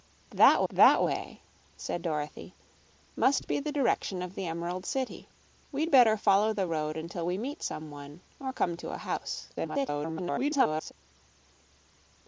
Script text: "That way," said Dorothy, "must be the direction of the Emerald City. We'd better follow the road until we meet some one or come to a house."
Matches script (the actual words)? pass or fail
fail